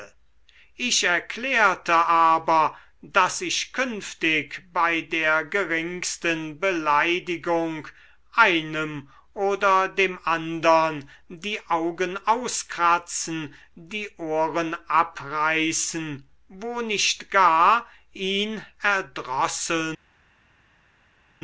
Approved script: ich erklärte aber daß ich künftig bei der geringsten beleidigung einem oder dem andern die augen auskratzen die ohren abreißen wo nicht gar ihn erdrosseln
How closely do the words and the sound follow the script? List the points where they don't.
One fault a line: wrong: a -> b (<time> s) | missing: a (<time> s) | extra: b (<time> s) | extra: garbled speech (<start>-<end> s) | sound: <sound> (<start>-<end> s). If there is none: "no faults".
no faults